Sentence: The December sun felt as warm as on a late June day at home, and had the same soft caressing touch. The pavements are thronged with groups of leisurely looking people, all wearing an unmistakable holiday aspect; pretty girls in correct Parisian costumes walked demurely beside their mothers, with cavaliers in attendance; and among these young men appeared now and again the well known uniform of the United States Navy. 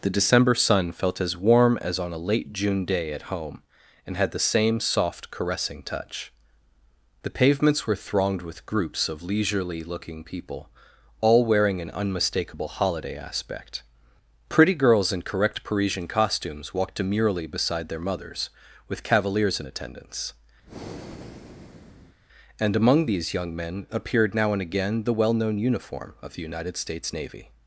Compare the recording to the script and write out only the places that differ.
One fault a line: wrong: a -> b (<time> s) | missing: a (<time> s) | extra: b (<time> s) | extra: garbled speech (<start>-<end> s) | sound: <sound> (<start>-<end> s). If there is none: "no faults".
wrong: are -> were (7.8 s)
sound: breath (20.6-22.2 s)